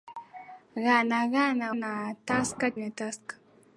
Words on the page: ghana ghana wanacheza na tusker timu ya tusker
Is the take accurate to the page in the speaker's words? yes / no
no